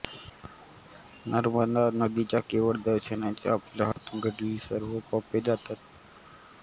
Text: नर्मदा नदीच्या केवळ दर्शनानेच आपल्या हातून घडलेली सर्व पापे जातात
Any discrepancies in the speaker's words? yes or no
no